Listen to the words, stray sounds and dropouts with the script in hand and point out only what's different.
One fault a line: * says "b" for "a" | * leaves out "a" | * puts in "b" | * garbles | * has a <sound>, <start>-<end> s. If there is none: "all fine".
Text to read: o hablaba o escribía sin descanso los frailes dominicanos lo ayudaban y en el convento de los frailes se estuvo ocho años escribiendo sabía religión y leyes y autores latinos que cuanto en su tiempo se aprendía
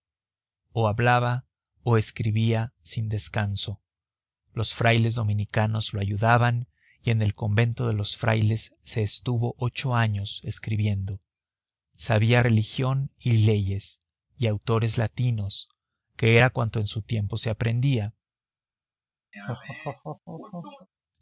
* puts in "era"
* has a laugh, 19.3-20.9 s